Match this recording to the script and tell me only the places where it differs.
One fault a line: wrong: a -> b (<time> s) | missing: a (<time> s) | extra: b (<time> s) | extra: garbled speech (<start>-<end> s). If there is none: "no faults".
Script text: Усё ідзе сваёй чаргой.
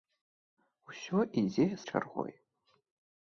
missing: сваёй (1.7 s)